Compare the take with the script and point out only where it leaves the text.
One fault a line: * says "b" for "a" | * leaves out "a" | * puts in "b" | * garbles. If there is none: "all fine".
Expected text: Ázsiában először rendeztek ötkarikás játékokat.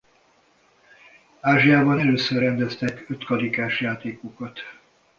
all fine